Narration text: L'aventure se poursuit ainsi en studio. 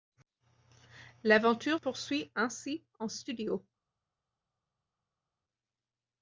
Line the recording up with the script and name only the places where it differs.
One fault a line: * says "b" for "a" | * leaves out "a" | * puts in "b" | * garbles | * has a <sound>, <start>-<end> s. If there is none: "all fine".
* leaves out "se"